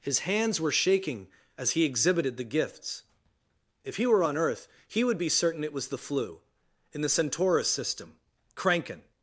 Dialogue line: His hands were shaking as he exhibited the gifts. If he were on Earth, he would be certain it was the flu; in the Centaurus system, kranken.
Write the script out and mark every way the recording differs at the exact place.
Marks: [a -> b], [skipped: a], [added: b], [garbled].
His hands were shaking as he exhibited the gifts. If he were on Earth, he would be certain it was the flu; in the Centaurus system, kranken.